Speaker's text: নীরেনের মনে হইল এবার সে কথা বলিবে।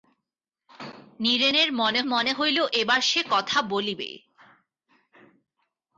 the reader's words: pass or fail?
fail